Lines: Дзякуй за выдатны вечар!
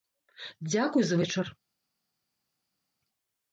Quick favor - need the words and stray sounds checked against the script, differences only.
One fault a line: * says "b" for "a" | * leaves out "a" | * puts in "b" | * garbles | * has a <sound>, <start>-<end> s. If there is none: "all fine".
* leaves out "выдатны"